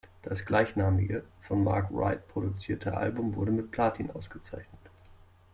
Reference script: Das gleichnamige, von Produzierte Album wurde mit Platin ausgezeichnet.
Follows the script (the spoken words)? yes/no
no